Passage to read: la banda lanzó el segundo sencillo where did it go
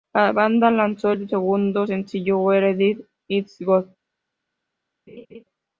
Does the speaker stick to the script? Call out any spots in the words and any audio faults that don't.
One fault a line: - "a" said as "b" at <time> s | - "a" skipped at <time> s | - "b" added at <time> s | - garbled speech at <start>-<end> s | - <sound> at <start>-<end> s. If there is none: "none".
- laugh at 5.1-5.4 s